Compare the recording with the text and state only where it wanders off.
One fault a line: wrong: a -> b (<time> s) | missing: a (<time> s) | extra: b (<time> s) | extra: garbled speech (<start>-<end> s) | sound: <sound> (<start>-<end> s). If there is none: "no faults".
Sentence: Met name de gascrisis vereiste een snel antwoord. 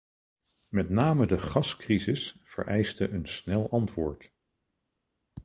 no faults